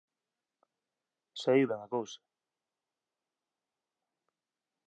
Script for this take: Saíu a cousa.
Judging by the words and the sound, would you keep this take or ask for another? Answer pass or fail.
fail